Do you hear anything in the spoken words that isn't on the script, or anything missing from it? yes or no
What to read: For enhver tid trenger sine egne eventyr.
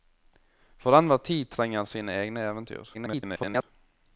yes